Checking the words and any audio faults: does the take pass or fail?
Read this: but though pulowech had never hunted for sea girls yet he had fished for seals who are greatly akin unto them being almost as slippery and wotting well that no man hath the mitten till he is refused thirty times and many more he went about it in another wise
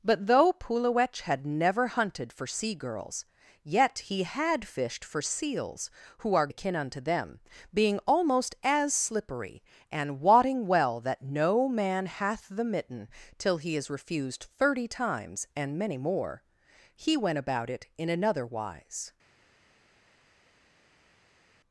fail